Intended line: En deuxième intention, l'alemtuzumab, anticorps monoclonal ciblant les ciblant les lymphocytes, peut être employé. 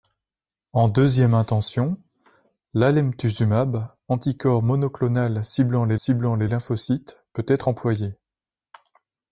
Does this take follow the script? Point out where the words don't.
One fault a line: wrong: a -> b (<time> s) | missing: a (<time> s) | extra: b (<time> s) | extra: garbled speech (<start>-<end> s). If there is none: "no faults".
no faults